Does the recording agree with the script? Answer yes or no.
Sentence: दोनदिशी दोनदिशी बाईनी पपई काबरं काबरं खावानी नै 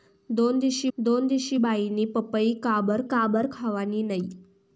yes